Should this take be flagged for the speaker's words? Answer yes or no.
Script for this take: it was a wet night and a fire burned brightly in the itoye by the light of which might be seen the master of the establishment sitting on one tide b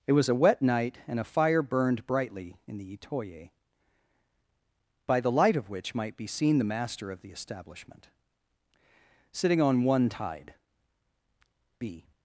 no